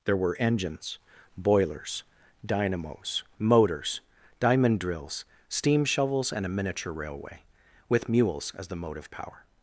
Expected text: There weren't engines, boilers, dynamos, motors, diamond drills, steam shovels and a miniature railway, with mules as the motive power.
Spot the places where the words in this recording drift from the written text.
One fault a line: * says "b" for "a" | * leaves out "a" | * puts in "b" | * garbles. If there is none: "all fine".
* says "were" for "weren't"